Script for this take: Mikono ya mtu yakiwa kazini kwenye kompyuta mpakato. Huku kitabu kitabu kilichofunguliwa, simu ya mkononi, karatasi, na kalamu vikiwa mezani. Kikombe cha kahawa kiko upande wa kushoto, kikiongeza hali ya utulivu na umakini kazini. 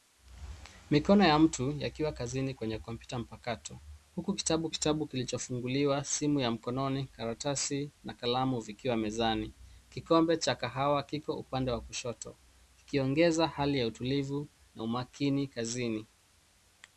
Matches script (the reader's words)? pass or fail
pass